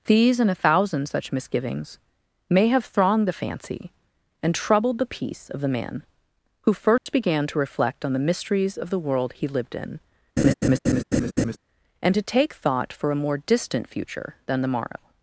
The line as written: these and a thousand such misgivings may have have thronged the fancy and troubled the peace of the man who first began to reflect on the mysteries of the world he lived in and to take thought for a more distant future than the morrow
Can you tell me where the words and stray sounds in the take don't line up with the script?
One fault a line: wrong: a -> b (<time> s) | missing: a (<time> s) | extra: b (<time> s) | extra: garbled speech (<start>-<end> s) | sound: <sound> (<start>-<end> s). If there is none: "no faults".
missing: have (2.8 s)
sound: dropout (7.0-7.1 s)
sound: laugh (10.4-11.6 s)